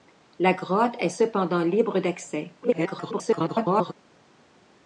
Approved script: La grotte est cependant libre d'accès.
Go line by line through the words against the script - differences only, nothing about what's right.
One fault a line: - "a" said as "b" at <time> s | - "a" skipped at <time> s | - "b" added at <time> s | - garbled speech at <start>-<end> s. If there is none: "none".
- garbled speech at 2.6-3.9 s